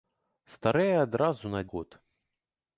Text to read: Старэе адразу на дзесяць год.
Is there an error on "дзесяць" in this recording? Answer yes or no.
yes